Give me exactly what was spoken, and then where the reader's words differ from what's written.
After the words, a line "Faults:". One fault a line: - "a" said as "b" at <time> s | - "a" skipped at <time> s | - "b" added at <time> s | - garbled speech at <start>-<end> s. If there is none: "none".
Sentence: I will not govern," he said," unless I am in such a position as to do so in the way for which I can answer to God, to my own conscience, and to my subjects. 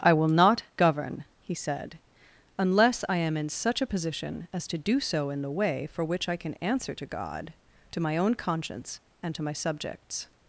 I will not govern," he said," unless I am in such a position as to do so in the way for which I can answer to God, to my own conscience, and to my subjects.
Faults:
none